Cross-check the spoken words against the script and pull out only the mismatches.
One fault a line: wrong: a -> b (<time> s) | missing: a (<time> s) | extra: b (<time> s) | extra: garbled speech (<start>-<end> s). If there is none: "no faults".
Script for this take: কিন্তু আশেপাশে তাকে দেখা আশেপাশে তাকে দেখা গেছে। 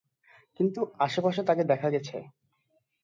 missing: আশেপাশে তাকে দেখা (1.9 s)